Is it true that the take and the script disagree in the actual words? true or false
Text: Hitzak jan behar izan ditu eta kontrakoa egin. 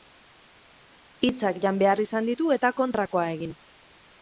false